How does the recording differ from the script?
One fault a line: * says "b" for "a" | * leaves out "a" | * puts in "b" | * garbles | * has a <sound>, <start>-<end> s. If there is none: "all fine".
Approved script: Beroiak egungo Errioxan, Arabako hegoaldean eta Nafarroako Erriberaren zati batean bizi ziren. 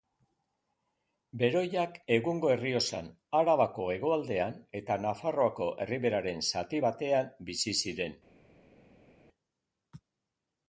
all fine